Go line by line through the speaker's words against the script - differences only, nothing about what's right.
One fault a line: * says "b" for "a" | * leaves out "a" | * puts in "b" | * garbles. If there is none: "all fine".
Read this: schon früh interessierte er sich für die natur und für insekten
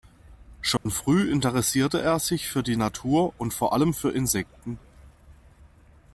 * puts in "vor allem"